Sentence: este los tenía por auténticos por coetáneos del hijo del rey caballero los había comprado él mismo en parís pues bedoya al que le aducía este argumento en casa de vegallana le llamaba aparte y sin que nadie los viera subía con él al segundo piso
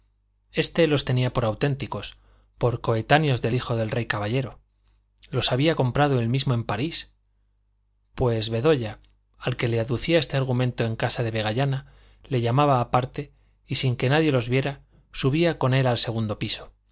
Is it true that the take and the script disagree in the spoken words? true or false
false